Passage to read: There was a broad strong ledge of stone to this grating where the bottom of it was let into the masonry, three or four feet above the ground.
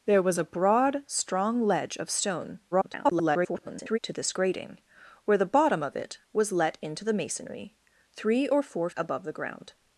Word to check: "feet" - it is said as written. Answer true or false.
false